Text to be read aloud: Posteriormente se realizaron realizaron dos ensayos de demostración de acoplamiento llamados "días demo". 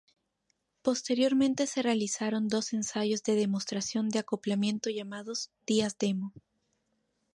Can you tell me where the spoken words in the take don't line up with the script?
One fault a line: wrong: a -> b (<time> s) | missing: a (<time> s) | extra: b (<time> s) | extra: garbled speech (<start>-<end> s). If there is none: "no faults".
missing: realizaron (2.5 s)